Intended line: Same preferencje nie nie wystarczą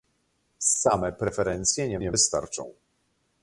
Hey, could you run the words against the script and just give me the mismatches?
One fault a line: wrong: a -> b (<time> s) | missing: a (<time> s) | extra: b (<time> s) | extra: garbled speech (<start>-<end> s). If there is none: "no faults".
no faults